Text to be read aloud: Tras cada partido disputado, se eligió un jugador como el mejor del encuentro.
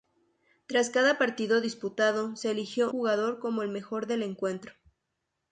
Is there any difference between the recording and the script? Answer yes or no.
yes